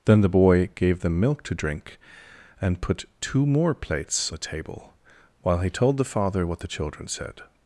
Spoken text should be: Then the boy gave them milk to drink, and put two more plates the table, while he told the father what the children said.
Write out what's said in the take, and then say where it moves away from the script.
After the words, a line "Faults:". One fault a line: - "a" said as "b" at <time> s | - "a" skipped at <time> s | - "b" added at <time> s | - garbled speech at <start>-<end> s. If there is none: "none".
Then the boy gave them milk to drink, and put two more plates the table, while he told the father what the children said.
Faults:
none